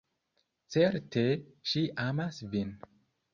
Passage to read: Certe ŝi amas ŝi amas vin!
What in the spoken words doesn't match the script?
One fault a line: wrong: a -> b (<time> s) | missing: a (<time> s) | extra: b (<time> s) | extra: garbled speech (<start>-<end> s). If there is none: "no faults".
missing: ŝi amas (2.4 s)